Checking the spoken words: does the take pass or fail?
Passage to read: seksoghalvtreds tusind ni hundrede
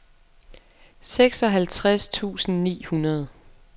pass